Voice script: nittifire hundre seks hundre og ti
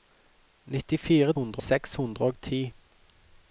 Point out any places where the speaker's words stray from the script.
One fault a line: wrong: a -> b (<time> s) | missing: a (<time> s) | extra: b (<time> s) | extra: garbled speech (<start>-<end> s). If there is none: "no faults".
no faults